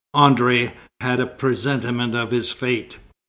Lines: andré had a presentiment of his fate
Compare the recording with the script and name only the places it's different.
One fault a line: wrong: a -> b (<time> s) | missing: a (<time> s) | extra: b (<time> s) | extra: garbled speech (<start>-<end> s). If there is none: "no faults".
no faults